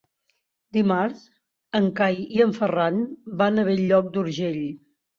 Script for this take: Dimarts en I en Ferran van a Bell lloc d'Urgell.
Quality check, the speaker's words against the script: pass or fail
fail